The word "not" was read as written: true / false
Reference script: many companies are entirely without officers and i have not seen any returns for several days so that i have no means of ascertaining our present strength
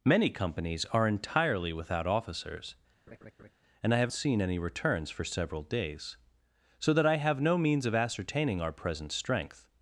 false